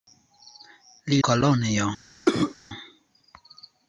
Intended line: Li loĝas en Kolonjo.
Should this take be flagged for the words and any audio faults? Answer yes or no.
yes